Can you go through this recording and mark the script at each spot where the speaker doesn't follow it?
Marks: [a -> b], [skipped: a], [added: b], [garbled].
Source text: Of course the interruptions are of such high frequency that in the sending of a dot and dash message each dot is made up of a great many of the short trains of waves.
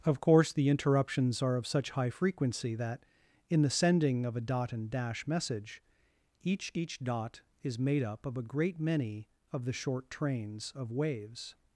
Of course the interruptions are of such high frequency that in the sending of a dot and dash message each [added: each] dot is made up of a great many of the short trains of waves.